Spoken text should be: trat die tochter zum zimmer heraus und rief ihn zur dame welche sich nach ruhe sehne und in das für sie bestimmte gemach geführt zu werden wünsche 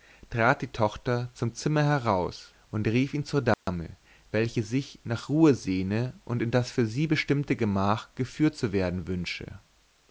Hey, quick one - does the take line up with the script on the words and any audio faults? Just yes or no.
no